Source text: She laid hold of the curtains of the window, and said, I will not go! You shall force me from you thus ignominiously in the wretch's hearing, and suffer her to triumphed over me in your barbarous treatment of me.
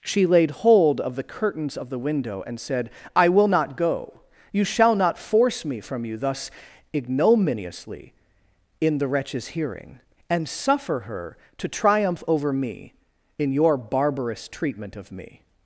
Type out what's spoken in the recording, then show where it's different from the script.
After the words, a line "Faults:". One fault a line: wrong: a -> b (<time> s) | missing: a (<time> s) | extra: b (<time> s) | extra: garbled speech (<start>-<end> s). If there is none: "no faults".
She laid hold of the curtains of the window, and said, I will not go! You shall not force me from you thus ignominiously in the wretch's hearing, and suffer her to triumph over me in your barbarous treatment of me.
Faults:
extra: not (5.0 s)
wrong: triumphed -> triumph (11.7 s)